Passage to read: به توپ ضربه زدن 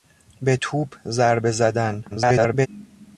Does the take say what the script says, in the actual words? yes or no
no